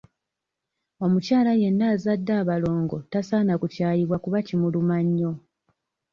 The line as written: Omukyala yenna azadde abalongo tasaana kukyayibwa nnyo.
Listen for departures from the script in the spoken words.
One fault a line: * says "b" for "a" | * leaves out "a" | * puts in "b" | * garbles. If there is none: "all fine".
* puts in "kuba kimuluma"